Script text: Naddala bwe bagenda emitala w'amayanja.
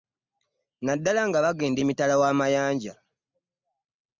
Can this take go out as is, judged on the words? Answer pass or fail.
fail